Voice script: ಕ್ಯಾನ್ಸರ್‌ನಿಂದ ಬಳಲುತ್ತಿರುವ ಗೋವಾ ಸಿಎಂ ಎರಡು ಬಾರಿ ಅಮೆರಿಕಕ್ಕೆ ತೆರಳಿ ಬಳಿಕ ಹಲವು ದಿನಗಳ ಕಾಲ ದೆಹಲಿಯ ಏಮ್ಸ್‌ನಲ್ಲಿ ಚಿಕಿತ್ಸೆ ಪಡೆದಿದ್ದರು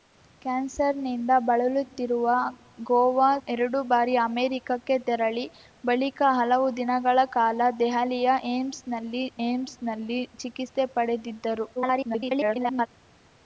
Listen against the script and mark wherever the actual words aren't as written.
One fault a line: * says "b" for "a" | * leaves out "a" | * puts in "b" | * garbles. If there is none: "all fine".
* leaves out "ಸಿಎಂ"
* puts in "ಏಮ್ಸ್‌ನಲ್ಲಿ"
* garbles